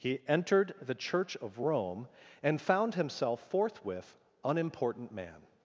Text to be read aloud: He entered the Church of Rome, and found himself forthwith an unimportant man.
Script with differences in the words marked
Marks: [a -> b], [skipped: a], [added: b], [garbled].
He entered the Church of Rome, and found himself forthwith [skipped: an] unimportant man.